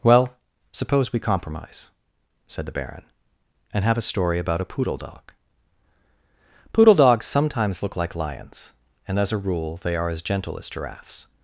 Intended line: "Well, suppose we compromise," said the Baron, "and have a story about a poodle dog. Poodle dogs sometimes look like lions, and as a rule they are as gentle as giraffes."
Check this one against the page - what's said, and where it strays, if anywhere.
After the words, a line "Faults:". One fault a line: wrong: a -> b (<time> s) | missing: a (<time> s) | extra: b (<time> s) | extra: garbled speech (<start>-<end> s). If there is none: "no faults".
"Well, suppose we compromise," said the Baron, "and have a story about a poodle dog. Poodle dogs sometimes look like lions, and as a rule they are as gentle as giraffes."
Faults:
no faults